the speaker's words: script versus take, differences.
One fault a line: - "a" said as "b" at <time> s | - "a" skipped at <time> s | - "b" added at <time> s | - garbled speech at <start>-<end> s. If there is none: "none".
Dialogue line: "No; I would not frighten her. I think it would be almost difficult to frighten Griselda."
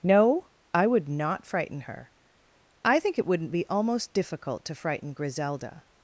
- "would" said as "wouldn't" at 3.3 s